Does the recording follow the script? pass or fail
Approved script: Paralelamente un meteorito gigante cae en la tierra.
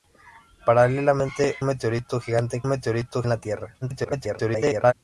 fail